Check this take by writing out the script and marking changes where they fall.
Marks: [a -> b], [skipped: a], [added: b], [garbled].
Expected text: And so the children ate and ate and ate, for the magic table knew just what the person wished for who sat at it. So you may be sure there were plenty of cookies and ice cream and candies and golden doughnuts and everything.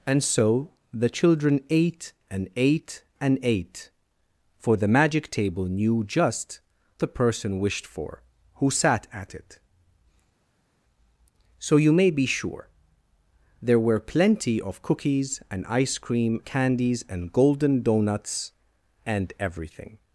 And so the children ate and ate and ate, for the magic table knew just [skipped: what] the person wished for who sat at it. So you may be sure there were plenty of cookies and ice cream [skipped: and] candies and golden doughnuts and everything.